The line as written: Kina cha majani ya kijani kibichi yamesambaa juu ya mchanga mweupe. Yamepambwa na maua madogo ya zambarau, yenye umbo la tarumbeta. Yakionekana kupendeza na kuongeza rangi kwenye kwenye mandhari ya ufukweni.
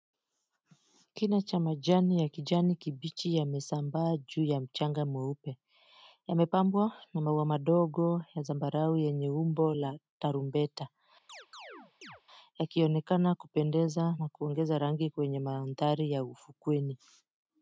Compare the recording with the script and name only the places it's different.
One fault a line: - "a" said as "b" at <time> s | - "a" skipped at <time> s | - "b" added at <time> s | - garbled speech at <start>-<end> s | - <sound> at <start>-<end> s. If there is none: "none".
- chirp at 11.3-12.2 s
- "kwenye" skipped at 15.4 s